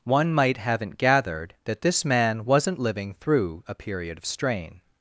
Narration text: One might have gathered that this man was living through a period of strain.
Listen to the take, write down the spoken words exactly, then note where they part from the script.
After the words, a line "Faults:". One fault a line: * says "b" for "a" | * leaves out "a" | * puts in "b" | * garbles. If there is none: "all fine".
One might haven't gathered that this man wasn't living through a period of strain.
Faults:
* says "haven't" for "have"
* says "wasn't" for "was"